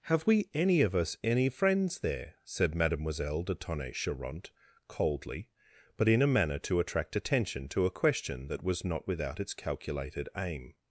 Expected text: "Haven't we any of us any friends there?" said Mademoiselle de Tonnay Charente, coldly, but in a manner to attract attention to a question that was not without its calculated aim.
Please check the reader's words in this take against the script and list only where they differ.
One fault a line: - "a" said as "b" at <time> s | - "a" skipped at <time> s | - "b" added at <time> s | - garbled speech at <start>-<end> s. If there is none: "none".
- "Haven't" said as "Have" at 0.1 s